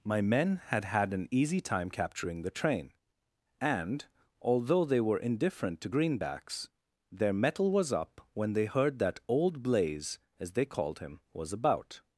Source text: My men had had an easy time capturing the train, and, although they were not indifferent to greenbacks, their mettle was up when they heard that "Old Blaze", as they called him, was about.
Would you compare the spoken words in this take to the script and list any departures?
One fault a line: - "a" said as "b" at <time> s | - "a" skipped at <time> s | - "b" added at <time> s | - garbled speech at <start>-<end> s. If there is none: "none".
- "not" skipped at 5.2 s